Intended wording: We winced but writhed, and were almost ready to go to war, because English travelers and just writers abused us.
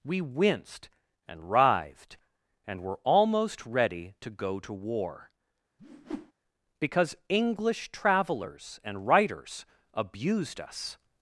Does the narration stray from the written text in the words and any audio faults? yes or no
yes